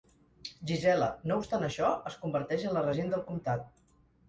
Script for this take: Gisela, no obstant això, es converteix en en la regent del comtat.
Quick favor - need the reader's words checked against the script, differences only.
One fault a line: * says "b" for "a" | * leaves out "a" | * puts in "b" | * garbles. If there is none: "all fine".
* leaves out "en"